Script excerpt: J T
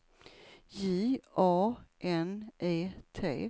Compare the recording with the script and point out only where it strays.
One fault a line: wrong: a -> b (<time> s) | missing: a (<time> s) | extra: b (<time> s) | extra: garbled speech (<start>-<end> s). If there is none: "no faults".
extra: A N E (1.4 s)